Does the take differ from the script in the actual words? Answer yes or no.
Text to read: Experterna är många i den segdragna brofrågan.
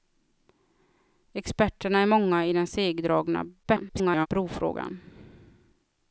yes